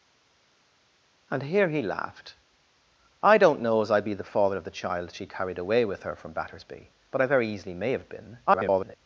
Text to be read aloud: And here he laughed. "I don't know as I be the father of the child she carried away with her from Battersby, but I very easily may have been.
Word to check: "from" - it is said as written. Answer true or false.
true